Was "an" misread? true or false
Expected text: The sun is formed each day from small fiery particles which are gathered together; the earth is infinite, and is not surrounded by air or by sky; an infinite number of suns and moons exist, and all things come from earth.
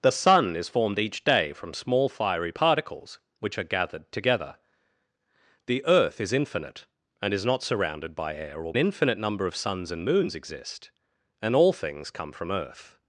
true